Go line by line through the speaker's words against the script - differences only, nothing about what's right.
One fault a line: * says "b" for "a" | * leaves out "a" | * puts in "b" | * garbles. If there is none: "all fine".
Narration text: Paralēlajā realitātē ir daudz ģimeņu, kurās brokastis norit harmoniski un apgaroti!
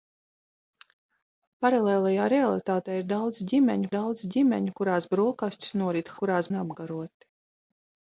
* puts in "daudz ģimeņu"
* says "kurās" for "harmoniski"